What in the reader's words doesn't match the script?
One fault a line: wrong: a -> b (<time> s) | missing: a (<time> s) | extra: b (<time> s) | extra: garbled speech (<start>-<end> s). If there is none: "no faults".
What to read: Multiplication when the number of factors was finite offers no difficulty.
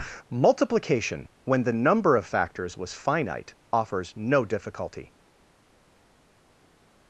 no faults